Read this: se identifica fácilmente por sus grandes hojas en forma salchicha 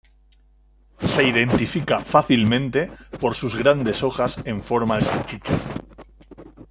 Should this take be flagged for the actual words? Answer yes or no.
no